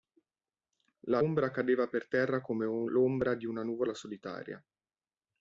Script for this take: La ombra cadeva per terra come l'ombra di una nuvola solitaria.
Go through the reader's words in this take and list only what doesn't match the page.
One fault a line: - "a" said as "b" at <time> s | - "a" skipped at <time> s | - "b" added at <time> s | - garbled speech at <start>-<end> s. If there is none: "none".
none